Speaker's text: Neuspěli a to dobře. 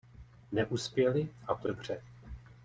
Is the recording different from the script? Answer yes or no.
no